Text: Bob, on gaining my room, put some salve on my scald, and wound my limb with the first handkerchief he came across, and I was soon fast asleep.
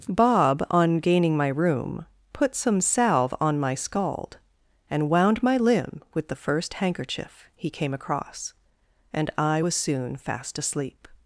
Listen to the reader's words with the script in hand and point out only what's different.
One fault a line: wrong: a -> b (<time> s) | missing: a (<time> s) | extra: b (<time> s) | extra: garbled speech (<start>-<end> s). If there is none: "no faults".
no faults